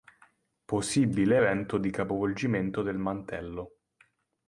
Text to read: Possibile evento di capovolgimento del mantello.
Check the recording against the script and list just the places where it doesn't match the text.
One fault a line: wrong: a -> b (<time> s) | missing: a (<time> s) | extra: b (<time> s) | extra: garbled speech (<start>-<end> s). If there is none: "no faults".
no faults